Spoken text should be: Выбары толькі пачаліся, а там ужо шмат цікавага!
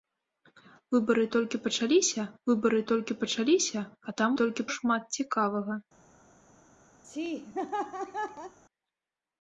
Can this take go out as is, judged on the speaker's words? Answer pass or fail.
fail